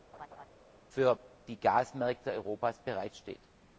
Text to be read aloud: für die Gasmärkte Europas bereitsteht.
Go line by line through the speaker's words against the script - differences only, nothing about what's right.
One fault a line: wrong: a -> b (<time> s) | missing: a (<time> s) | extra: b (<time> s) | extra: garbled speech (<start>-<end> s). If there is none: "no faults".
no faults